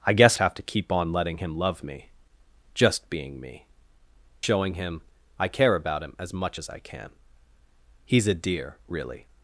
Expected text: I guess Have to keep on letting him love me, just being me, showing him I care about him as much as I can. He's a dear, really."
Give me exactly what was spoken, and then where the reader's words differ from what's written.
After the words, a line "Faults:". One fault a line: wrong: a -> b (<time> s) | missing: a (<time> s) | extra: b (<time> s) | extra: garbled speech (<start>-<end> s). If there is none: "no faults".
I guess Have to keep on letting him love me, just being me, showing him I care about him as much as I can. He's a dear, really."
Faults:
no faults